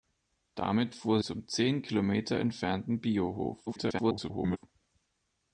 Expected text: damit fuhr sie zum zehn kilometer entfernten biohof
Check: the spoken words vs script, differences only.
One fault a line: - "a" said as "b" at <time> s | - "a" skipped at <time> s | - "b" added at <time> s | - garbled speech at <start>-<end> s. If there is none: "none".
- "sie" skipped at 1.2 s
- garbled speech at 3.7-4.6 s